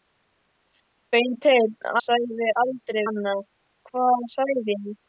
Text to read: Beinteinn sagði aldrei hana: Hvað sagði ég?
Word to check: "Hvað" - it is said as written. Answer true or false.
true